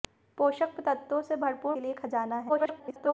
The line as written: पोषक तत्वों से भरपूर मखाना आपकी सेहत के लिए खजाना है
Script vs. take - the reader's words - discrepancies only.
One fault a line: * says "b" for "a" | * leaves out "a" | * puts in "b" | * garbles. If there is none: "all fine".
* leaves out "मखाना आपकी सेहत"
* garbles